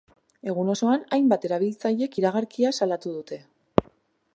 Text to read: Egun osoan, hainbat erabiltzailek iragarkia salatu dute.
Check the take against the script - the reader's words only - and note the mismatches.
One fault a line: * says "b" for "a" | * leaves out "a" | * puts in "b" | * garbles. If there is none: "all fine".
all fine